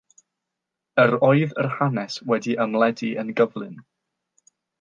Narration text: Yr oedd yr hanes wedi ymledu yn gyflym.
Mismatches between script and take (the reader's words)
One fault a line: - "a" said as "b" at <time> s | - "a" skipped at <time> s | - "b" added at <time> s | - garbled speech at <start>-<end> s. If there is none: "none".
none